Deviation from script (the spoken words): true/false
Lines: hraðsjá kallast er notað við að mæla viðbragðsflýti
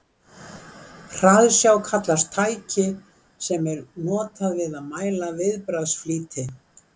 true